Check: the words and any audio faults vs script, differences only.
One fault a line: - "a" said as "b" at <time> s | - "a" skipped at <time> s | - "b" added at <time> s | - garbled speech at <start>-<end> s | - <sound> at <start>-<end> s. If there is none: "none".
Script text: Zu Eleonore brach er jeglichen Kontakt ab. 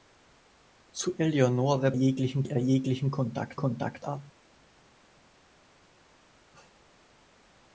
- "brach" said as "jeglichen" at 1.9 s
- "Kontakt" added at 3.5 s